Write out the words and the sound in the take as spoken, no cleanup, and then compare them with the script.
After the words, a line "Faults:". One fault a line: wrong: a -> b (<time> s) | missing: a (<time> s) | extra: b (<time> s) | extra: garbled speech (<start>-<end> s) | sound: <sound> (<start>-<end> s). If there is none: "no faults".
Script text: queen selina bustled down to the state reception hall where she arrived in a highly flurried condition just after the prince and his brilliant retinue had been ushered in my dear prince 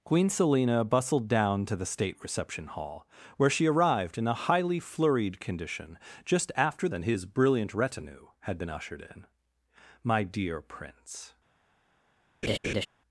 queen selina bustled down to the state reception hall where she arrived in a highly flurried condition just after and his brilliant retinue had been ushered in my dear prince
Faults:
missing: the prince (6.9 s)
sound: laugh (12.4-12.9 s)